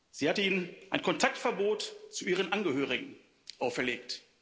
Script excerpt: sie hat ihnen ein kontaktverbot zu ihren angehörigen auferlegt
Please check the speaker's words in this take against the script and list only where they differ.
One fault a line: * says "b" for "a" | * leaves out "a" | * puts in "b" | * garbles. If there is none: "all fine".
all fine